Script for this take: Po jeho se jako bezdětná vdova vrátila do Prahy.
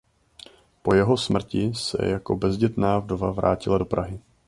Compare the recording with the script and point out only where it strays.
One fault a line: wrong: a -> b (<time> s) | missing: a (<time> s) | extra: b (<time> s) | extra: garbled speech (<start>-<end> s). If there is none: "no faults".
extra: smrti (1.2 s)